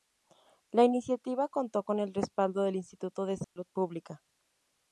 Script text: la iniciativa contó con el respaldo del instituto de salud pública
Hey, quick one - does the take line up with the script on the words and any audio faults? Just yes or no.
no